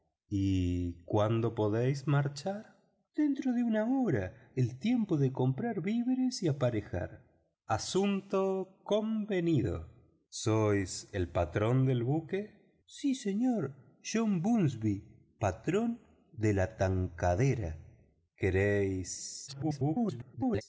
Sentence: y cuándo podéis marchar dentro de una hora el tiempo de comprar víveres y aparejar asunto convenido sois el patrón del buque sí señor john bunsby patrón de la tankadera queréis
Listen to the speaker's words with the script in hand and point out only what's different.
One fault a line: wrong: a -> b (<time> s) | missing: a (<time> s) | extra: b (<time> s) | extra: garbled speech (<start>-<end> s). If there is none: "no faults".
extra: garbled speech (19.5-20.6 s)